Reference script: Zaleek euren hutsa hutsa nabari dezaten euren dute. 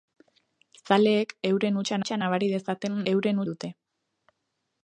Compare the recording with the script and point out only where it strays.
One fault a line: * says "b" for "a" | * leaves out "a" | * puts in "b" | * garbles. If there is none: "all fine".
all fine